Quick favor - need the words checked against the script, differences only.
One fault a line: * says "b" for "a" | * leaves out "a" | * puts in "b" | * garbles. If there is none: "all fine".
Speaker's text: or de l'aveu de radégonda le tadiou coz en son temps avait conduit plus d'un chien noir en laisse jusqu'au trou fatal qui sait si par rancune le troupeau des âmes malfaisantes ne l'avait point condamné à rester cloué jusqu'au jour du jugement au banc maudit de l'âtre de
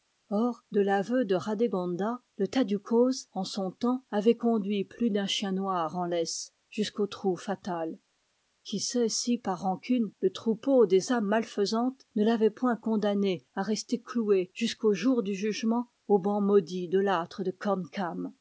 all fine